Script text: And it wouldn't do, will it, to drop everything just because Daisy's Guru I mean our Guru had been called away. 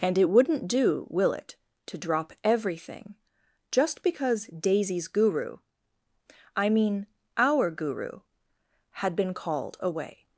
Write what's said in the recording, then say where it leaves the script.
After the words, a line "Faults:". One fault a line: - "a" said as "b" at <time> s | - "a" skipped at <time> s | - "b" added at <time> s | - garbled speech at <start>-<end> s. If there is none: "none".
And it wouldn't do, will it, to drop everything just because Daisy's Guru I mean our Guru had been called away.
Faults:
none